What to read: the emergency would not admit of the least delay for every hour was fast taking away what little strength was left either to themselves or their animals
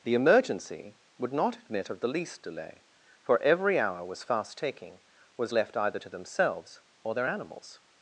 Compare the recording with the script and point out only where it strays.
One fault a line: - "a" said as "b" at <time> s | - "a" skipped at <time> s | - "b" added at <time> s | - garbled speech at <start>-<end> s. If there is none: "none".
- "away what little strength" skipped at 5.0 s